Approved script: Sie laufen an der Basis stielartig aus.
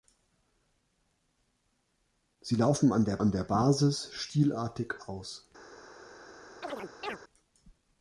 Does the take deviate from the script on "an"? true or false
false